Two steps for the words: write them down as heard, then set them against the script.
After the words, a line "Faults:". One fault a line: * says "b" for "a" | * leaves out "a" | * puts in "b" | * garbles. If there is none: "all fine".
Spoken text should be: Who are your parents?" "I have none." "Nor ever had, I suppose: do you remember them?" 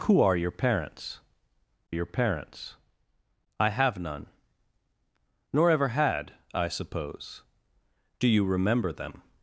Who are your parents your parents?" "I have none." "Nor ever had, I suppose: do you remember them?"
Faults:
* puts in "your parents"